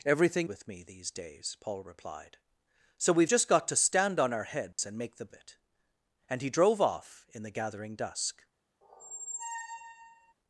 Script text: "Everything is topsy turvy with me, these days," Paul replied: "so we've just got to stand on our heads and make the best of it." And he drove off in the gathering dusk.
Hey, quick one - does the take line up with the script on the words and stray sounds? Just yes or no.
no